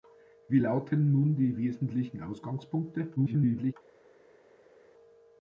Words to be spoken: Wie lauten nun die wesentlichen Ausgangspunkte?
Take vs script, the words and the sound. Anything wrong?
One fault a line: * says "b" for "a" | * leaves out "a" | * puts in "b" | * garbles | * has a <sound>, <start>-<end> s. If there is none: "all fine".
* garbles